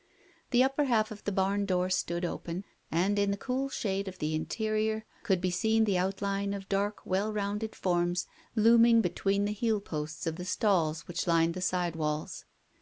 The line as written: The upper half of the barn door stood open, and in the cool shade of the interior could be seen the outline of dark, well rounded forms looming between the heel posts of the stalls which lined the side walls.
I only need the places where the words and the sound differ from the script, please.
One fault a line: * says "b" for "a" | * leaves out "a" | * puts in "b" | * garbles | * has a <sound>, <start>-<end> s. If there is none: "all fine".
all fine